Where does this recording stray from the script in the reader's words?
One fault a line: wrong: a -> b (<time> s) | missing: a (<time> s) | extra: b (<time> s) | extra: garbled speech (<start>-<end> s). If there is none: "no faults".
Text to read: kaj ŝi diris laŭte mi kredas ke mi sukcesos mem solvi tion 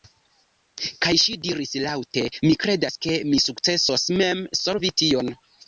no faults